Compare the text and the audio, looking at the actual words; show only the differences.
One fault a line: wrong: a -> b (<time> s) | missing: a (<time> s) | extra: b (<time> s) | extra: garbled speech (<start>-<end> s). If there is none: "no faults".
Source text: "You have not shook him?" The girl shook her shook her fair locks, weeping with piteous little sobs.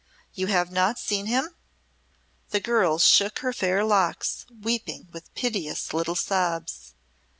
wrong: shook -> seen (1.0 s)
missing: shook her (3.5 s)